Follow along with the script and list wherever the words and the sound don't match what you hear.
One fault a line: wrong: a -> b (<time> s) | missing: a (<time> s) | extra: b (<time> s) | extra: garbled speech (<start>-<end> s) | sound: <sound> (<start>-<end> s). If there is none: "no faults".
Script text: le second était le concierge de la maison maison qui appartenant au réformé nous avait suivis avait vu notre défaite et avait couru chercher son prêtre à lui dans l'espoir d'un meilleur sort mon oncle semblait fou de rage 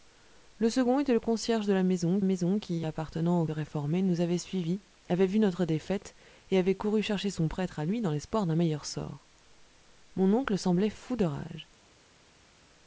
no faults